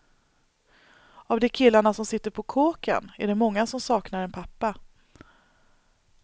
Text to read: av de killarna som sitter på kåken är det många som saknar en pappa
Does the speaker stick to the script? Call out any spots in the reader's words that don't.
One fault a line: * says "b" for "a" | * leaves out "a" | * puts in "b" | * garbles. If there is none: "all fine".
all fine